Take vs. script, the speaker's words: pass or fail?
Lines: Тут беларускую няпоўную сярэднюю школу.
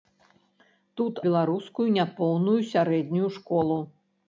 pass